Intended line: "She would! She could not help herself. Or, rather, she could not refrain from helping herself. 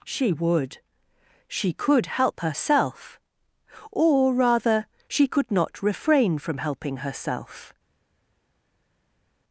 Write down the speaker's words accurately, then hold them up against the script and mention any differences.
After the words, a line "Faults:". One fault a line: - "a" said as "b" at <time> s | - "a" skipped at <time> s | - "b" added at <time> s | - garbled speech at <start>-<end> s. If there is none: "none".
"She would! She could help herself. Or, rather, she could not refrain from helping herself.
Faults:
- "not" skipped at 2.1 s